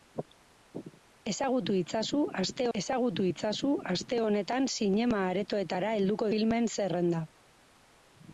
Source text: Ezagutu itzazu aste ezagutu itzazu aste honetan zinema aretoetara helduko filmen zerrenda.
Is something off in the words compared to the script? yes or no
no